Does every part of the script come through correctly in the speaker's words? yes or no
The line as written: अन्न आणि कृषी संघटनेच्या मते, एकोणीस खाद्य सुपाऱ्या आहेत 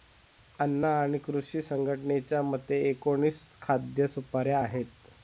yes